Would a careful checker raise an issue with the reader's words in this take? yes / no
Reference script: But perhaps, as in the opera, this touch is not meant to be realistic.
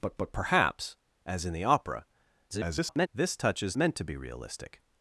yes